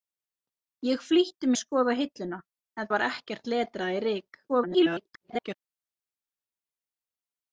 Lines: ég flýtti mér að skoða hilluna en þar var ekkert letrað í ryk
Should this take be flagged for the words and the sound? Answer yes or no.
yes